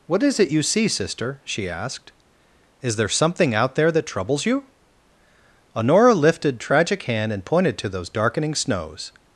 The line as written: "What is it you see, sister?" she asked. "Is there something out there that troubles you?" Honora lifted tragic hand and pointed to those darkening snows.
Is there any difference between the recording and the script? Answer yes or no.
no